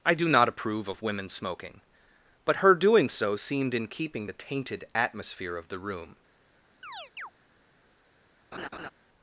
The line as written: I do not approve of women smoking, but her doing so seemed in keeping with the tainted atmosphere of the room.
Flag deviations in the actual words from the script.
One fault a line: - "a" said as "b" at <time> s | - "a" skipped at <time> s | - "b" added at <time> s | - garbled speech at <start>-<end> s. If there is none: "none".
- "with" skipped at 4.3 s